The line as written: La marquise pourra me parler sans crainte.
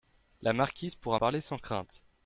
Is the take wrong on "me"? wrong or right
wrong